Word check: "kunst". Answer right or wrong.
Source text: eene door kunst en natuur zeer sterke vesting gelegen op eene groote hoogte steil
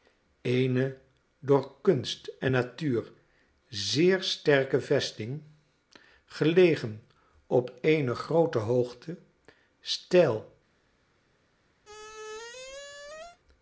right